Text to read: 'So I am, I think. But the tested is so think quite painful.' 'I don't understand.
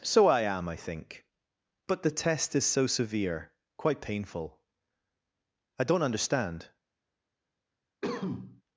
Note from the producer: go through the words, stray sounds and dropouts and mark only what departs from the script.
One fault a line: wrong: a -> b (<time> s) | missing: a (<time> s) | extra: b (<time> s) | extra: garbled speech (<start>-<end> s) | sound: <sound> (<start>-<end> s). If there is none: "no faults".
wrong: tested -> test (2.1 s)
wrong: think -> severe (2.9 s)
sound: cough (8.0-8.6 s)